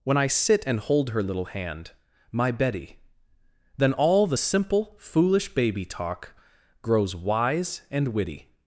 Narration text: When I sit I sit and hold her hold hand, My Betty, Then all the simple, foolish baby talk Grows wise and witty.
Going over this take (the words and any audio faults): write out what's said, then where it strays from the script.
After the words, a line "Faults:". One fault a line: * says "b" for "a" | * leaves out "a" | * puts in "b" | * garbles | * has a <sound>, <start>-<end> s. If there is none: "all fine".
When I sit and hold her little hand, My Betty, Then all the simple, foolish baby talk Grows wise and witty.
Faults:
* leaves out "I sit"
* says "little" for "hold"